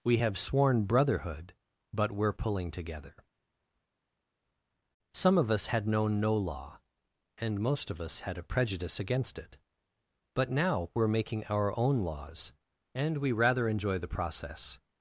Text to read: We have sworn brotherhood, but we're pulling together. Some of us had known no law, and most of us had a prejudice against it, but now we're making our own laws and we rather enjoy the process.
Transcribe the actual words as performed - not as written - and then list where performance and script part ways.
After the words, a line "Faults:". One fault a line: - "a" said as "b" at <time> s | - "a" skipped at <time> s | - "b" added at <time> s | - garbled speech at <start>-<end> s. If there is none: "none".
We have sworn brotherhood, but we're pulling together. Some of us had known no law, and most of us had a prejudice against it, but now we're making our own laws and we rather enjoy the process.
Faults:
none